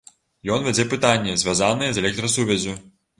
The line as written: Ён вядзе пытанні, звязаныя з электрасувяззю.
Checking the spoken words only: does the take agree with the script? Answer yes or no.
yes